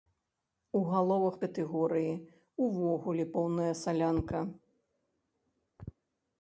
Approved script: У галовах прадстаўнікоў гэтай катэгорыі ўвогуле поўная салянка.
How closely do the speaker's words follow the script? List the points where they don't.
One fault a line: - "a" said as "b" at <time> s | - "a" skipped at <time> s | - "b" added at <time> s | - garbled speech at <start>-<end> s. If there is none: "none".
- "прадстаўнікоў гэтай" skipped at 1.4 s